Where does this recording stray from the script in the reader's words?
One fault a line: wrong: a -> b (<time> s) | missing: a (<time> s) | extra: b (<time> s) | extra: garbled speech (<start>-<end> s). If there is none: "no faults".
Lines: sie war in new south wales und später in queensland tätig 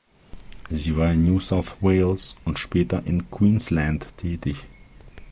no faults